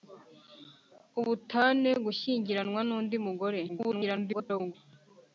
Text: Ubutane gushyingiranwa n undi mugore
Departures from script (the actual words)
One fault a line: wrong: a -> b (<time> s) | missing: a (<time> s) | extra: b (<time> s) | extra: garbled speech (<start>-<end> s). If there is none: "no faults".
extra: garbled speech (3.7-4.7 s)